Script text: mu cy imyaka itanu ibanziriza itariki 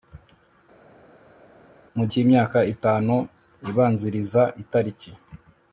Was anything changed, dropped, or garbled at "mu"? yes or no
no